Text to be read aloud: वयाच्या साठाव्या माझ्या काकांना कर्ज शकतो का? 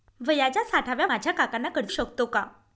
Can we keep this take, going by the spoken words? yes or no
yes